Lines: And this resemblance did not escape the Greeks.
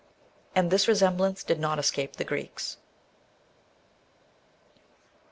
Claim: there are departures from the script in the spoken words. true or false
false